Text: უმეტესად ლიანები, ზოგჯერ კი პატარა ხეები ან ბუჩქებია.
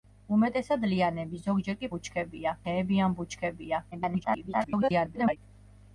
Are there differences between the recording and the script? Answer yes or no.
yes